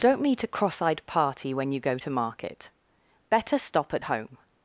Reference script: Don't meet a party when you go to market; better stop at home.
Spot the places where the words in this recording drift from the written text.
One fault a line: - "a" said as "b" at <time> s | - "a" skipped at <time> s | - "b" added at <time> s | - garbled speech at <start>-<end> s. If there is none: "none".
- "cross eyed" added at 0.5 s